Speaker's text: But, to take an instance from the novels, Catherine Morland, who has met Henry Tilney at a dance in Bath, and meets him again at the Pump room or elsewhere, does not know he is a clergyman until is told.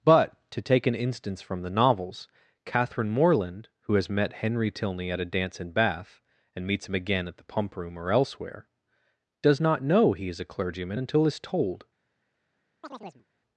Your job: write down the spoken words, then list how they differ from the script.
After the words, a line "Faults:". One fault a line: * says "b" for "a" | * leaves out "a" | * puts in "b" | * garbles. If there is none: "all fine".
But, to take an instance from the novels, Catherine Morland, who has met Henry Tilney at a dance in Bath, and meets him again at the Pump room or elsewhere, does not know he is a clergyman until is told.
Faults:
all fine